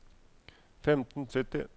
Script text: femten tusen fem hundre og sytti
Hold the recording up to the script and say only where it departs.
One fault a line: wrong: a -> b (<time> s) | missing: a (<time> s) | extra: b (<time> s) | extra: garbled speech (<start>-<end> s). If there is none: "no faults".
missing: tusen fem hundre (1.3 s)